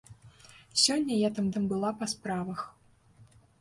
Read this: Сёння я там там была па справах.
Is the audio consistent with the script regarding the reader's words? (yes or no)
yes